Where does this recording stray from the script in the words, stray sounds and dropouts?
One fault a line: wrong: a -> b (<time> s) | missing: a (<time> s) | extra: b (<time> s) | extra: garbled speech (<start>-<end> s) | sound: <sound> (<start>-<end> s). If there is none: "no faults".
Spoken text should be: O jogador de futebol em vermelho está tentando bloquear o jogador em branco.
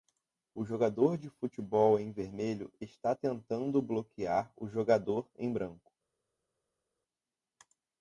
no faults